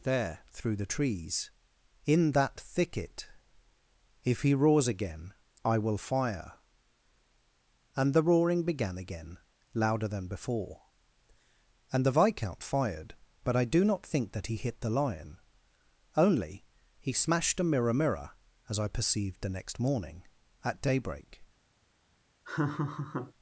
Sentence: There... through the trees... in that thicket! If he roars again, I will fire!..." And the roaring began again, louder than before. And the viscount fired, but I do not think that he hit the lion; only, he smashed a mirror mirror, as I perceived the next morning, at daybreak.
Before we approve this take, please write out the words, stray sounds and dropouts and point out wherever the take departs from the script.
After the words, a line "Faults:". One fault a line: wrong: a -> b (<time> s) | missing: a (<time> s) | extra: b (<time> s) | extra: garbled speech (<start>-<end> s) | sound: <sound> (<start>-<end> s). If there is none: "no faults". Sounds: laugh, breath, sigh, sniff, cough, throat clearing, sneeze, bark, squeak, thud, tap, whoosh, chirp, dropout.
There... through the trees... in that thicket! If he roars again, I will fire!..." And the roaring began again, louder than before. And the viscount fired, but I do not think that he hit the lion; only, he smashed a mirror mirror, as I perceived the next morning, at daybreak.
Faults:
sound: laugh (22.4-23.3 s)